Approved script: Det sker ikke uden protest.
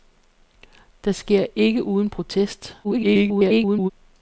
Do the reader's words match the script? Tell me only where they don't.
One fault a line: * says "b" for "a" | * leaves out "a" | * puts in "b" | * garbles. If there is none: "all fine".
* garbles